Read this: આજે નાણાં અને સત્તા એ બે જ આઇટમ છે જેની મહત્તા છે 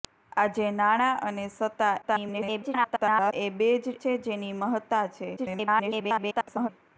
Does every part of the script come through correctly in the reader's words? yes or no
no